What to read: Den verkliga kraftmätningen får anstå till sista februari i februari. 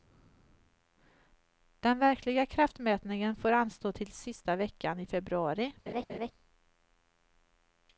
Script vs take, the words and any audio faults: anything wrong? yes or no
yes